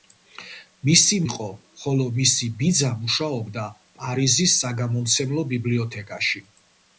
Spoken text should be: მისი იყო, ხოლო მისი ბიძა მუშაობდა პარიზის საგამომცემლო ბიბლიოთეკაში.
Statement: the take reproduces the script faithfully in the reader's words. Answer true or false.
true